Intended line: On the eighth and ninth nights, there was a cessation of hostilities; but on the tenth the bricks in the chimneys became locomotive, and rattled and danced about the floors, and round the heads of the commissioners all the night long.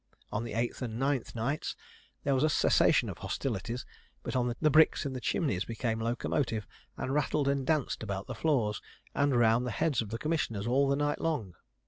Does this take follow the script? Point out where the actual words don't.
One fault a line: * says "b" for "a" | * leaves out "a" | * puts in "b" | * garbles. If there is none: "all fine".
* leaves out "tenth"